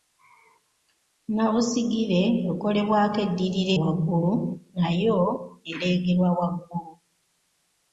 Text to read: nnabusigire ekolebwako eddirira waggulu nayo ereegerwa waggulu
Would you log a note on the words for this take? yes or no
no